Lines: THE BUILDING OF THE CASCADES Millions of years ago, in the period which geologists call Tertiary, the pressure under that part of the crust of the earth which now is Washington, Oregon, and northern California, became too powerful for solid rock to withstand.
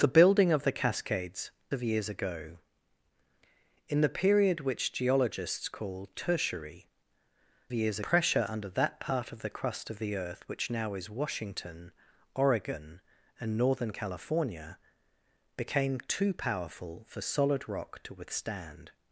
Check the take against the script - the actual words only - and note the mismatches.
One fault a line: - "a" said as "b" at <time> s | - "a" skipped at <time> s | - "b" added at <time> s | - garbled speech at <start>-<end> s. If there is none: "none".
- "Millions" skipped at 1.5 s
- "the" said as "years" at 7.7 s